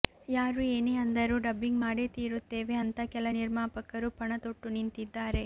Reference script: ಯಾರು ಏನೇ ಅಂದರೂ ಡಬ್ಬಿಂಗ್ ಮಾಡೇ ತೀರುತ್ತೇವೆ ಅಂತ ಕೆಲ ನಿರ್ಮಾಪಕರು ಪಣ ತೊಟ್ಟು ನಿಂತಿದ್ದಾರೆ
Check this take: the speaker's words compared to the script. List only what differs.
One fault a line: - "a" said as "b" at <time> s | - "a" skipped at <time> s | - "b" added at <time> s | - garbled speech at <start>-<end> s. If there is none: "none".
none